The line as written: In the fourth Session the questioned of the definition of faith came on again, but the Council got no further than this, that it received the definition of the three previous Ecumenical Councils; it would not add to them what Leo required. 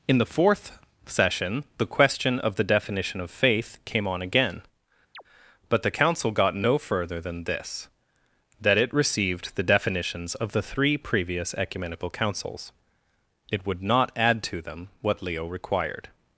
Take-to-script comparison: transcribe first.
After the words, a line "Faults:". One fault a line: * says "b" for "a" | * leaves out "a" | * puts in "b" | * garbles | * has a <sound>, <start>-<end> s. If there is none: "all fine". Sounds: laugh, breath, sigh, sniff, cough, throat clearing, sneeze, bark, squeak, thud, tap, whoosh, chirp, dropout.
In the fourth Session the question of the definition of faith came on again, but the Council got no further than this, that it received the definitions of the three previous Ecumenical Councils; it would not add to them what Leo required.
Faults:
* says "question" for "questioned"
* has a chirp, 5.1-5.2 s
* says "definitions" for "definition"